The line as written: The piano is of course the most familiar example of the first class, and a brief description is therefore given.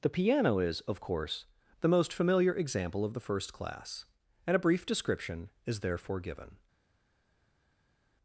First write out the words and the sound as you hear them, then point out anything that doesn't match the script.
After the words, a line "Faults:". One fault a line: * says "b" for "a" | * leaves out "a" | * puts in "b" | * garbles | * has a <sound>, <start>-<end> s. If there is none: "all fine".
The piano is of course the most familiar example of the first class, and a brief description is therefore given.
Faults:
all fine